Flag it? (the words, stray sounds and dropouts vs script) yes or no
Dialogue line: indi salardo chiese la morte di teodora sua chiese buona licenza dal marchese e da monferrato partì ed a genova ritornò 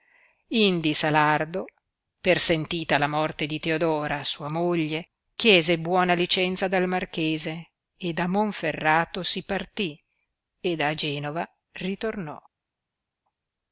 yes